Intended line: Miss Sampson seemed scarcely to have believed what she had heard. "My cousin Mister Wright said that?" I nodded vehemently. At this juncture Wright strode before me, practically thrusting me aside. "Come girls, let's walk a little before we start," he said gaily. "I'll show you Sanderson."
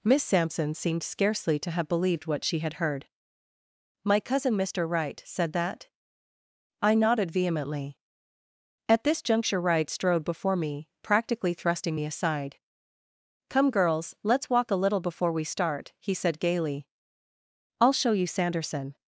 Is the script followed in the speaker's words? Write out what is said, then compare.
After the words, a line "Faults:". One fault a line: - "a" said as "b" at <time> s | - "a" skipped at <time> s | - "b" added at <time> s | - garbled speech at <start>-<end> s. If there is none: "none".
Miss Sampson seemed scarcely to have believed what she had heard. "My cousin Mister Wright said that?" I nodded vehemently. At this juncture Wright strode before me, practically thrusting me aside. "Come girls, let's walk a little before we start," he said gaily. "I'll show you Sanderson."
Faults:
none